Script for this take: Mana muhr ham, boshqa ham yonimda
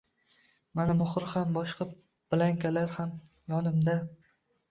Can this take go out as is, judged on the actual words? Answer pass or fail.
fail